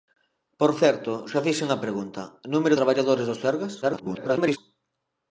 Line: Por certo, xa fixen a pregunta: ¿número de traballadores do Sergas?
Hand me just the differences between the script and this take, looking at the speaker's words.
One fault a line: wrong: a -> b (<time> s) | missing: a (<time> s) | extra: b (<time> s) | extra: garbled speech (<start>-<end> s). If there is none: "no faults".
missing: de (2.8 s)
extra: garbled speech (3.8-4.6 s)